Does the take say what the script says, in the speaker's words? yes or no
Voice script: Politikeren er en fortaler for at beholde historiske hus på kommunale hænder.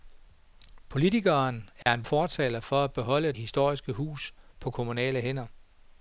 yes